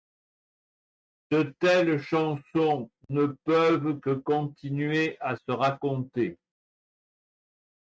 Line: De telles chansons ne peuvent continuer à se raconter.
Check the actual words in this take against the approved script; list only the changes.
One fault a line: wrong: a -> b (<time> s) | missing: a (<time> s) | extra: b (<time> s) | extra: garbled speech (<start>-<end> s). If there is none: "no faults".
extra: que (4.0 s)